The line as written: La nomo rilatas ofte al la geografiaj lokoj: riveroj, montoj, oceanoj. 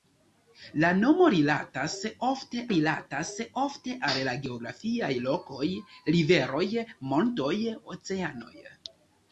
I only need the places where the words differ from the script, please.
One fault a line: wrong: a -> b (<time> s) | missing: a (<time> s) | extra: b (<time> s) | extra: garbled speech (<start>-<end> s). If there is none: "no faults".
extra: rilatas ofte (2.7 s)